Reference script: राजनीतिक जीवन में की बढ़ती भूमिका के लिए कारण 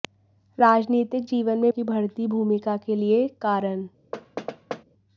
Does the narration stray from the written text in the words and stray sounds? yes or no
yes